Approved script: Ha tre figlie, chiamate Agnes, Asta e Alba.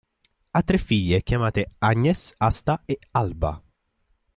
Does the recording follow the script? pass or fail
pass